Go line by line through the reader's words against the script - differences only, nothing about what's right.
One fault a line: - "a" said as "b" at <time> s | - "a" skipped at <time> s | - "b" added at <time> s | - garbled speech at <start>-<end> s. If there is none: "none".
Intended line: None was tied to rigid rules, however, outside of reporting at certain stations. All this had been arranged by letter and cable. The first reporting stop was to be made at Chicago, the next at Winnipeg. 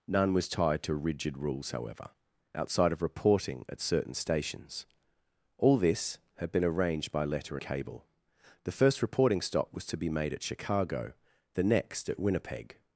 - "and" skipped at 7.6 s